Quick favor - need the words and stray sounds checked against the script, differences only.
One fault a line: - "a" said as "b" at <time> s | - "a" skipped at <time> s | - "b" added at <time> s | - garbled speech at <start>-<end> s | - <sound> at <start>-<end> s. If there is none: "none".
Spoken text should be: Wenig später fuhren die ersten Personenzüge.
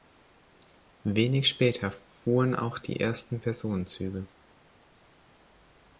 - "auch" added at 2.5 s